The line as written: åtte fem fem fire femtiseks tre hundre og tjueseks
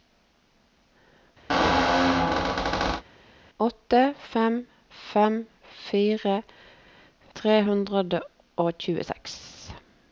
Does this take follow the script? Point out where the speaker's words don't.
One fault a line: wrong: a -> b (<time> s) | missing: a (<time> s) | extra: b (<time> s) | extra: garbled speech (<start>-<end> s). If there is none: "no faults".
missing: femtiseks (6.3 s)